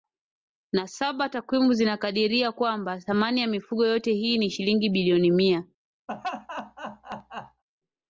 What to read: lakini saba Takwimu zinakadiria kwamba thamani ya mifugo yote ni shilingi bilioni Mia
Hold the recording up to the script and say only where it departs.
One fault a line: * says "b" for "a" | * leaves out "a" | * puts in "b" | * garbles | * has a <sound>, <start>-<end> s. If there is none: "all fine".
* says "na" for "lakini"
* puts in "hii"
* has a laugh, 6.1-7.6 s